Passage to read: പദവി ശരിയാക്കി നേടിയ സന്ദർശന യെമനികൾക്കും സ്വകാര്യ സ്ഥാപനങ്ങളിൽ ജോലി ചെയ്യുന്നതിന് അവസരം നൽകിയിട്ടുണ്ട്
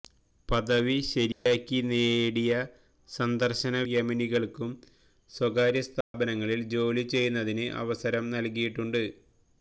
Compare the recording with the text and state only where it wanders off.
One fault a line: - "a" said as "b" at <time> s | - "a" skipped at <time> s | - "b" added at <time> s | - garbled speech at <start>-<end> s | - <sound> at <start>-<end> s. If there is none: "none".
- dropout at 1.3-1.5 s
- dropout at 6.0-6.1 s